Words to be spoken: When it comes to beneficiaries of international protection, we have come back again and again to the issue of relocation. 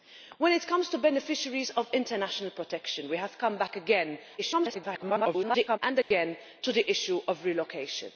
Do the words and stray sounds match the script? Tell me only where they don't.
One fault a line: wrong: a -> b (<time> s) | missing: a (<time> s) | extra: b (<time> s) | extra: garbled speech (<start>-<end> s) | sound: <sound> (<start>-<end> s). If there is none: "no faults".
extra: garbled speech (4.4-5.8 s)
sound: dropout (6.0-6.1 s)